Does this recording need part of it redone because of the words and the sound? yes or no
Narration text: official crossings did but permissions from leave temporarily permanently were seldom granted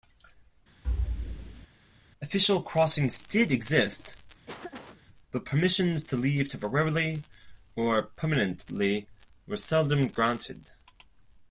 yes